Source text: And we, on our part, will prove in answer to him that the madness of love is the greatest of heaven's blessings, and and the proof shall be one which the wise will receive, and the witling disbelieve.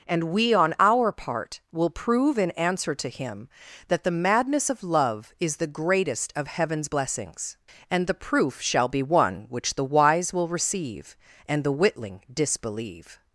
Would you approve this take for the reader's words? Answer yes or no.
no